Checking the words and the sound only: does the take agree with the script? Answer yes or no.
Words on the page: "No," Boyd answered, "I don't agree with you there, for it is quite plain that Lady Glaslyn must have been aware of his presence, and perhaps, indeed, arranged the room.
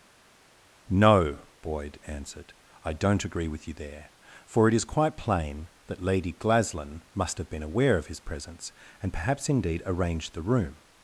yes